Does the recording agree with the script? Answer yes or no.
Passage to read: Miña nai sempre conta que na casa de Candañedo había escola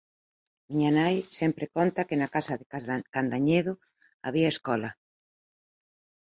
yes